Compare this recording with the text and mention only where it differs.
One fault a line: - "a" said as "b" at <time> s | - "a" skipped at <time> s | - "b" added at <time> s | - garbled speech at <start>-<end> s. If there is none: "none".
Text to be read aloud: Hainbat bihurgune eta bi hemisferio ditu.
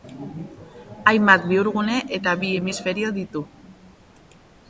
none